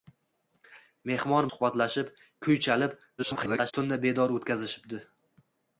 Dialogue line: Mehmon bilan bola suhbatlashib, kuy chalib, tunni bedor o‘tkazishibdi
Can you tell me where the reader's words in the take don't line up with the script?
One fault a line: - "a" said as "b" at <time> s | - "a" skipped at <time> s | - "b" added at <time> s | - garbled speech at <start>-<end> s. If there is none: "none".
- "bilan bola" skipped at 1.5 s
- garbled speech at 3.2-3.7 s